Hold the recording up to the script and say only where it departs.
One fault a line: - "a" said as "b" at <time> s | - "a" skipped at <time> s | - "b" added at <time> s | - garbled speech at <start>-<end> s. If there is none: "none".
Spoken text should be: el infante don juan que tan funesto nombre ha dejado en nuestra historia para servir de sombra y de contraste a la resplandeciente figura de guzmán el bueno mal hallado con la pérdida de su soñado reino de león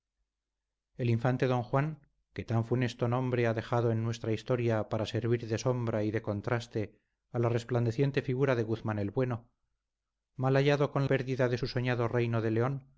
- "la" skipped at 11.1 s